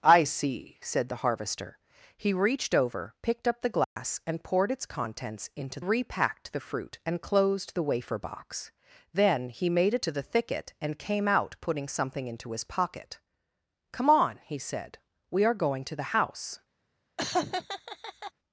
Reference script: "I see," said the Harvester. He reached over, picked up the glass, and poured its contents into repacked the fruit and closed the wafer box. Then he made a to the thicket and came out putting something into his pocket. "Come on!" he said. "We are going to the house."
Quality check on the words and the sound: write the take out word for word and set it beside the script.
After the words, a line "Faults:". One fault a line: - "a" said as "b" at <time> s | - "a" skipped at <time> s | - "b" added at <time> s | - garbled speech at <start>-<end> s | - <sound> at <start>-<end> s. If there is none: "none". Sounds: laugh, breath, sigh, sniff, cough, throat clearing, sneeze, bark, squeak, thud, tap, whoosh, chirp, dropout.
"I see," said the Harvester. He reached over, picked up the glass, and poured its contents into repacked the fruit and closed the wafer box. Then he made a to the thicket and came out putting something into his pocket. "Come on!" he said. "We are going to the house."
Faults:
- dropout at 3.8-4.0 s
- laugh at 17.2-18.3 s